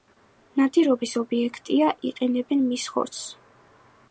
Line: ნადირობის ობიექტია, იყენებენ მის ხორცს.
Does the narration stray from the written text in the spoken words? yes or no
no